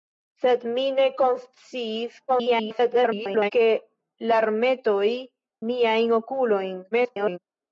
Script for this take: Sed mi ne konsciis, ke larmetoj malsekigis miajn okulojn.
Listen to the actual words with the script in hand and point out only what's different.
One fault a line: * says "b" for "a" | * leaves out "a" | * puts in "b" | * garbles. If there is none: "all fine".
* garbles
* leaves out "malsekigis"
* garbles